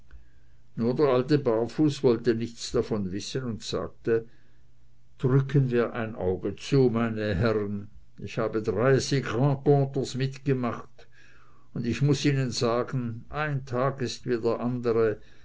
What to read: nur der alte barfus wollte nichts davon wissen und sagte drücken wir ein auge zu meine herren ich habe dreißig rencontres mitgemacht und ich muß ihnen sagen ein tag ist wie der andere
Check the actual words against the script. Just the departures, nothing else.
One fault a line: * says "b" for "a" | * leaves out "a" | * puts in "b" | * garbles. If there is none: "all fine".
all fine